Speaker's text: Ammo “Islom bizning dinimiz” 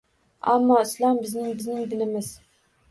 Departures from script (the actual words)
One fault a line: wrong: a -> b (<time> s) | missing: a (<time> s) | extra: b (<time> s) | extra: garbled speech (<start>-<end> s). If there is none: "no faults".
extra: bizning (1.6 s)